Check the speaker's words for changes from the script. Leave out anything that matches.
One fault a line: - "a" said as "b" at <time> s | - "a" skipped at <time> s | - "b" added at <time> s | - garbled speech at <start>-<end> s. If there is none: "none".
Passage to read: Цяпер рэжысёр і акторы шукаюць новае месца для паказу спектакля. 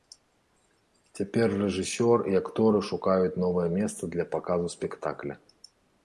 none